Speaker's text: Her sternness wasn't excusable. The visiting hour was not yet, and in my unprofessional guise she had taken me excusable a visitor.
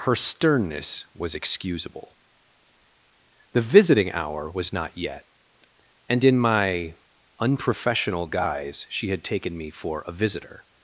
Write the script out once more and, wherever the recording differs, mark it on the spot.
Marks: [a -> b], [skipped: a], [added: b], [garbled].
Her sternness [wasn't -> was] excusable. The visiting hour was not yet, and in my unprofessional guise she had taken me [excusable -> for] a visitor.